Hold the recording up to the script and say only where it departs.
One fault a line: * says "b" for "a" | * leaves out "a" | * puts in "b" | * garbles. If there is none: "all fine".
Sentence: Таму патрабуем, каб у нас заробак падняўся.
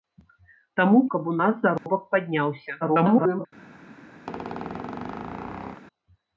* leaves out "патрабуем"
* garbles